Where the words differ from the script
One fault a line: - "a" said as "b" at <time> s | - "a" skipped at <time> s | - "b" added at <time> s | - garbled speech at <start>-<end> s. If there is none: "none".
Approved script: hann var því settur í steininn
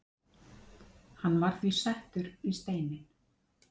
none